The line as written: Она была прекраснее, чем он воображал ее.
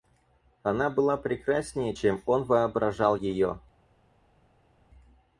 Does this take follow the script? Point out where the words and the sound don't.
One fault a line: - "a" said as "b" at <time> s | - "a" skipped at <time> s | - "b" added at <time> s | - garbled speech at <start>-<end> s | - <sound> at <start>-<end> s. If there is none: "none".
none